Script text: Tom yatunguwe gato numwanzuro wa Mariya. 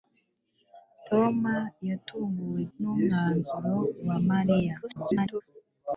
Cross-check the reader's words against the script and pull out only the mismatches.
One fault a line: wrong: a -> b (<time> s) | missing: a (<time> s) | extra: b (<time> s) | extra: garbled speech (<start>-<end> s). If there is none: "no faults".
missing: gato (2.6 s)
extra: garbled speech (4.8-5.4 s)